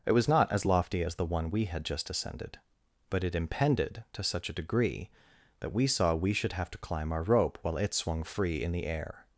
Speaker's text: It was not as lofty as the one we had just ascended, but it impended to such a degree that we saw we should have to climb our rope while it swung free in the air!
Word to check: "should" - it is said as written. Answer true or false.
true